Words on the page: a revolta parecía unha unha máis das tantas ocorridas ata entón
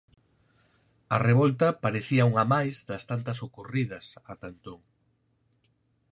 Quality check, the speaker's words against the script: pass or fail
fail